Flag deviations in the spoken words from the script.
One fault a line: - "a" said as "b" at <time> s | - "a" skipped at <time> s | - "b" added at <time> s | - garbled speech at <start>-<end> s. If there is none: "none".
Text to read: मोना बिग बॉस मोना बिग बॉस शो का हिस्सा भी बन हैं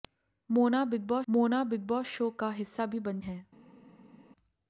none